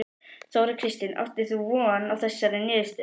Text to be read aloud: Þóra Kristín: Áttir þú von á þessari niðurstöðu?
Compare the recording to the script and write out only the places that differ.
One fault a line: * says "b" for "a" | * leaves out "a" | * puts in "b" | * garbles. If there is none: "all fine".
all fine